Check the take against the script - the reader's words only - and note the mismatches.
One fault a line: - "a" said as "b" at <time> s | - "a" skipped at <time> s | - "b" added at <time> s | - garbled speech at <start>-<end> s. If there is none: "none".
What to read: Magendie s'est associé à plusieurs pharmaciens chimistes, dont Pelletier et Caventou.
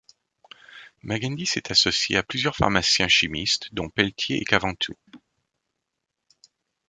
none